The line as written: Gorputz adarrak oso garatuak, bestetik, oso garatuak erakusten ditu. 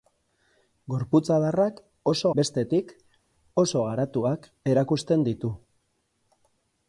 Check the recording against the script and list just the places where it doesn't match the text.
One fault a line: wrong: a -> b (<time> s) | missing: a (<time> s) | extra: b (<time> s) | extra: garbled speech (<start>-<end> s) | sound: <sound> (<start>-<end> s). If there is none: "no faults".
missing: garatuak (2.3 s)